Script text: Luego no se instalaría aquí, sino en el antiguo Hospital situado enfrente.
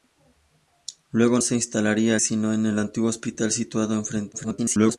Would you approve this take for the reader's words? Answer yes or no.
no